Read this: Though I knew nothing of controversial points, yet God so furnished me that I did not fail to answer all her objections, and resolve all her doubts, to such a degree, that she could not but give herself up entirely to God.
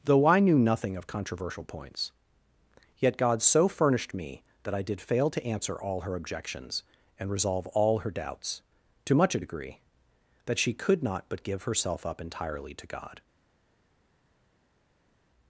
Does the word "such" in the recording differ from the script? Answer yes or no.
yes